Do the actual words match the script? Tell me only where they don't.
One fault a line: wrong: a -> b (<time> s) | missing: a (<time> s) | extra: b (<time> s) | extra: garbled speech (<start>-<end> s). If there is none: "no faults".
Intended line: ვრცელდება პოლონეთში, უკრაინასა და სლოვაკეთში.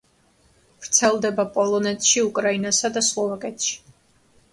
no faults